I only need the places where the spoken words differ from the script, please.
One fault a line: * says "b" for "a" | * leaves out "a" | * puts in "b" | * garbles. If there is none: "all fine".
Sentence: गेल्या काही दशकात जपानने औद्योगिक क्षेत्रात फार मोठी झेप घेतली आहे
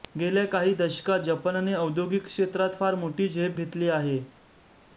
all fine